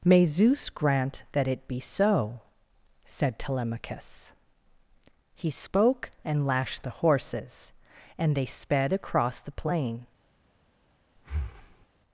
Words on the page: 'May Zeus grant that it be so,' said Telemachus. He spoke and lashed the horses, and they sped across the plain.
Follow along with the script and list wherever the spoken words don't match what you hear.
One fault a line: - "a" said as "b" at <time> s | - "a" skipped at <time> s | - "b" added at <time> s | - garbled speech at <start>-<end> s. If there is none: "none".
none